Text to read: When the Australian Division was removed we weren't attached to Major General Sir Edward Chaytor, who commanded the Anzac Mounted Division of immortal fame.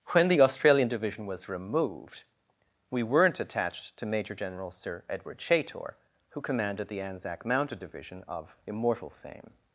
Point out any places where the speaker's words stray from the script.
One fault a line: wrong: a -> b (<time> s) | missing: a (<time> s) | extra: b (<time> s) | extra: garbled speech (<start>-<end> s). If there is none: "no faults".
no faults